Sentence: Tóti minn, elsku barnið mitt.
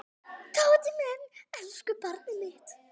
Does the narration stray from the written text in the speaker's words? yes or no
no